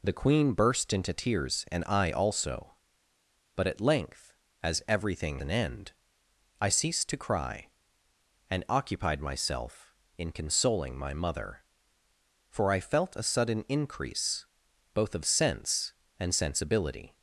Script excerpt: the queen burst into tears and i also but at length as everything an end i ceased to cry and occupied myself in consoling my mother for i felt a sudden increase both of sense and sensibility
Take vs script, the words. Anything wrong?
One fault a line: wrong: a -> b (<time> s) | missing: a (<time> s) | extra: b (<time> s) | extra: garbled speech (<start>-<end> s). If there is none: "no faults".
no faults